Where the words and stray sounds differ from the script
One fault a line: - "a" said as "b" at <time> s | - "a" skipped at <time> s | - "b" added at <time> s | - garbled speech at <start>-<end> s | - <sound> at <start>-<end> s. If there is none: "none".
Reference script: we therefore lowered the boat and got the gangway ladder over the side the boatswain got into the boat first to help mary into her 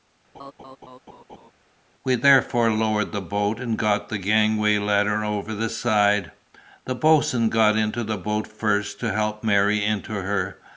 - laugh at 0.3-1.5 s